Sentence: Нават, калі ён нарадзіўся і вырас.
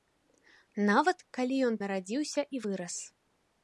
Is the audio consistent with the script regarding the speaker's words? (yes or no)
yes